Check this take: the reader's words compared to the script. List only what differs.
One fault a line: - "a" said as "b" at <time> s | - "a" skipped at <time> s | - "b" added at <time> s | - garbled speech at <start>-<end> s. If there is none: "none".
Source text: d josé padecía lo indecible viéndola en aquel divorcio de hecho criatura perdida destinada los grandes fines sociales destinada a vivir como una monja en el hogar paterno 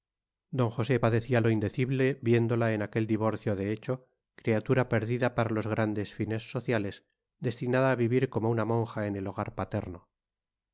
- "destinada" said as "para" at 5.3 s